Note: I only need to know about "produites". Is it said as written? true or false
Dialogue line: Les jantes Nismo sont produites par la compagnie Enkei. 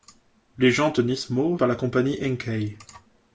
false